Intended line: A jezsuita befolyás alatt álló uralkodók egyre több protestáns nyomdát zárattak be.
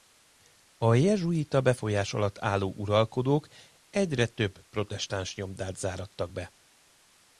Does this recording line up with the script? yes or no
yes